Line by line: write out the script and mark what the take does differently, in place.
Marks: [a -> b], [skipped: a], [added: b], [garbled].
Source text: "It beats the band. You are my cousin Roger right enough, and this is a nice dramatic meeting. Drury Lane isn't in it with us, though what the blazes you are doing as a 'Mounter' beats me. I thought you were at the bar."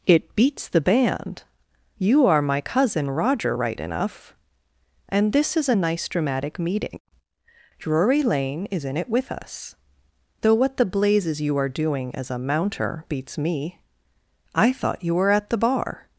"It beats the band. You are my cousin Roger right enough, and this is a nice dramatic meeting. Drury Lane [isn't -> is] in it with us, though what the blazes you are doing as a 'Mounter' beats me. I thought you were at the bar."